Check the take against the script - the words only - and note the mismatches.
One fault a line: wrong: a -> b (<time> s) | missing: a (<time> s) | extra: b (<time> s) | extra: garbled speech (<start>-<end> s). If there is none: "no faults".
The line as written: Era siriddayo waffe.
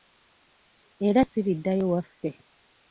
no faults